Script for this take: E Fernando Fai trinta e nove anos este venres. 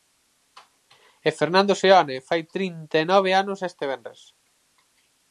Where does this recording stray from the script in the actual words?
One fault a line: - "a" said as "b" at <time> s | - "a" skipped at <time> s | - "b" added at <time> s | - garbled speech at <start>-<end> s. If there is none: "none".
- "Seoane" added at 1.8 s